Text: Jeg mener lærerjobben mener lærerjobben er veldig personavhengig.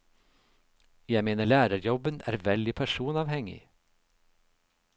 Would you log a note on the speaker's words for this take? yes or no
yes